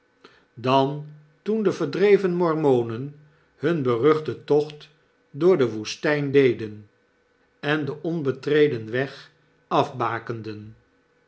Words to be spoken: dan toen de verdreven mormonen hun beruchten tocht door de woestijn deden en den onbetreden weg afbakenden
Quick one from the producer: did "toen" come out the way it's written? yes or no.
yes